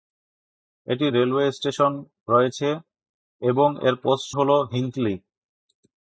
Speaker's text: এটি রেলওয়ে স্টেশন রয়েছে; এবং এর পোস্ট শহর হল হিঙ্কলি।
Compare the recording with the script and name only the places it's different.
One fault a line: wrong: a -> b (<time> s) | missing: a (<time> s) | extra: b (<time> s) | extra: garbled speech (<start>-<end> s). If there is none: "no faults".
missing: শহর (4.3 s)